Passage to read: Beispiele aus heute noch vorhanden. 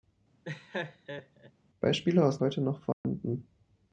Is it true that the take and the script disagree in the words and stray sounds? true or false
true